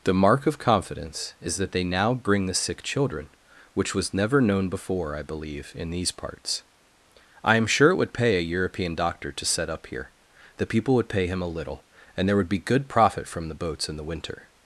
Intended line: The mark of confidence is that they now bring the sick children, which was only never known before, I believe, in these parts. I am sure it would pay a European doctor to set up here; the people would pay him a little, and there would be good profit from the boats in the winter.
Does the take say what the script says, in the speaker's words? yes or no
no